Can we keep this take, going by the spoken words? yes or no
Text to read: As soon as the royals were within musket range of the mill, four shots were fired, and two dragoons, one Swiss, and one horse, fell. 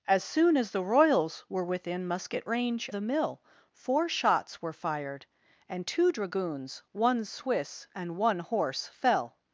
no